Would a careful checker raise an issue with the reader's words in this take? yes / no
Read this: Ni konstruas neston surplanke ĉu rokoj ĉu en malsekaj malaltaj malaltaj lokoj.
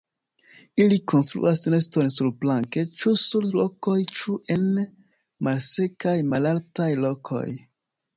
yes